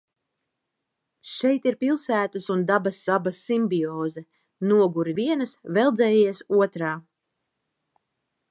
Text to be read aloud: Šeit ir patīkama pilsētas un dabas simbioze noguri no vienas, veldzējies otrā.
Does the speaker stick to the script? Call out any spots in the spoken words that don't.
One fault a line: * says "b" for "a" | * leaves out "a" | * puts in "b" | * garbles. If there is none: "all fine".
* leaves out "patīkama"
* puts in "dabas"
* leaves out "no"